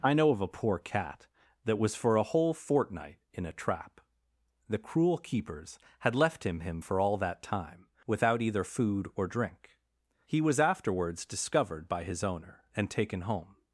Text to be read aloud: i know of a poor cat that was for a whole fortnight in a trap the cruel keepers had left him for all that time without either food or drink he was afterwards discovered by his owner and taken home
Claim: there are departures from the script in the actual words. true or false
true